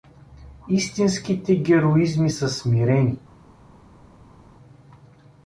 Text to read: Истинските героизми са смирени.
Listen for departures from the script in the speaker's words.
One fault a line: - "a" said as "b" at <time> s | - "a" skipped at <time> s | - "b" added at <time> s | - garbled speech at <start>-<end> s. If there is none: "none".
none